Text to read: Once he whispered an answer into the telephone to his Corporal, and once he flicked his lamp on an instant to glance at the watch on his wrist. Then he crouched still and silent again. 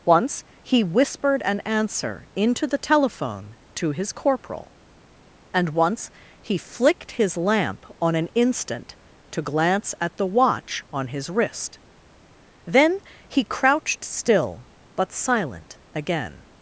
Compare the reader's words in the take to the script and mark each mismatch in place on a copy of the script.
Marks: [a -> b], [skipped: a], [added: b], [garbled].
Once he whispered an answer into the telephone to his Corporal, and once he flicked his lamp on an instant to glance at the watch on his wrist. Then he crouched still [and -> but] silent again.